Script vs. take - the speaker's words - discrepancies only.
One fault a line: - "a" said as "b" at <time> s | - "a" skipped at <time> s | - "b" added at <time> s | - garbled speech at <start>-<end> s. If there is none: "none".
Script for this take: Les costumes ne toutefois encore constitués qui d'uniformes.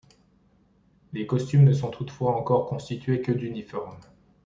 - "sont" added at 1.7 s
- "qui" said as "que" at 3.2 s